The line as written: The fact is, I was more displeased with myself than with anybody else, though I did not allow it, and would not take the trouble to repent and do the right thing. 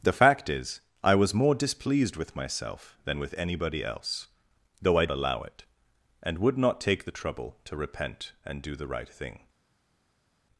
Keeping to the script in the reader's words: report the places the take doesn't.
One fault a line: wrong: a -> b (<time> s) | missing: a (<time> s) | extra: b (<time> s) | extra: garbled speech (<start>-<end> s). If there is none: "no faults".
missing: did not (5.0 s)